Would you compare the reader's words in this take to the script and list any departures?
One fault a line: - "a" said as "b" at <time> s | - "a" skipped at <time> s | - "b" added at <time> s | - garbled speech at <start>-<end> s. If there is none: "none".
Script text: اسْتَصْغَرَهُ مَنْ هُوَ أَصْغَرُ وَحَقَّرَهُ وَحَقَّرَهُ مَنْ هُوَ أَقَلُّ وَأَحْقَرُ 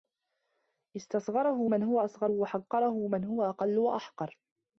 - "وَحَقَّرَهُ" skipped at 3.1 s